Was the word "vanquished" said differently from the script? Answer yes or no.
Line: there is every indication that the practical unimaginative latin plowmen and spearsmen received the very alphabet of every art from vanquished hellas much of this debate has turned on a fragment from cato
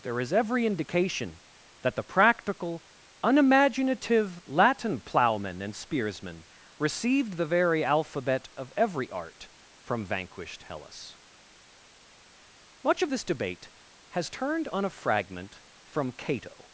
no